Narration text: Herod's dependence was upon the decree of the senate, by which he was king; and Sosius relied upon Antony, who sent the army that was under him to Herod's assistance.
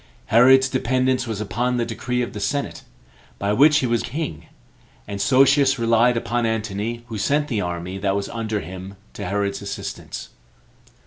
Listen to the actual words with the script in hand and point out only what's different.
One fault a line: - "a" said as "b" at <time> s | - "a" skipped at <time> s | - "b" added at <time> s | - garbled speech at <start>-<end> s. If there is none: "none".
none